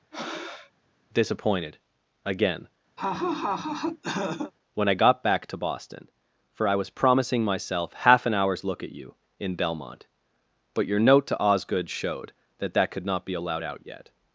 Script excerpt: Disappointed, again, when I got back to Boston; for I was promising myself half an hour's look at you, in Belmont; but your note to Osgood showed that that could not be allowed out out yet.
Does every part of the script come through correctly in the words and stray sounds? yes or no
no